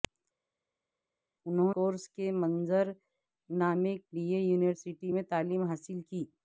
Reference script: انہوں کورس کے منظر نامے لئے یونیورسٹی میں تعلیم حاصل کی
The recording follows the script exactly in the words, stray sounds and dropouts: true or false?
true